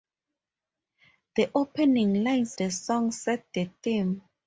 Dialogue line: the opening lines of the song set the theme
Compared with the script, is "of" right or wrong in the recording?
wrong